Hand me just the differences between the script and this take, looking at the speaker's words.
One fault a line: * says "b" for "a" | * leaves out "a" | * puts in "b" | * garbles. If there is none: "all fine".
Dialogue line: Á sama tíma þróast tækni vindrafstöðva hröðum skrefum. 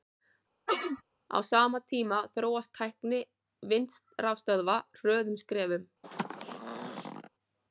all fine